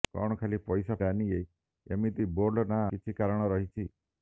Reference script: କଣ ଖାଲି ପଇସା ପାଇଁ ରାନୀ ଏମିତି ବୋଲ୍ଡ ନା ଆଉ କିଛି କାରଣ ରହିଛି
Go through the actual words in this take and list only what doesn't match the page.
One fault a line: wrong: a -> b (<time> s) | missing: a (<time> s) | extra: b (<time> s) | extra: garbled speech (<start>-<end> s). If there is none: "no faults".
missing: ପାଇଁ (0.9 s)
missing: ଆଉ (2.8 s)